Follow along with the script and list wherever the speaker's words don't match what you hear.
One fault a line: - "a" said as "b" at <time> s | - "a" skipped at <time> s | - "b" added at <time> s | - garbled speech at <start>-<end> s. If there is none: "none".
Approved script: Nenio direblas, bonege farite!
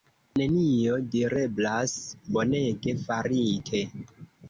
none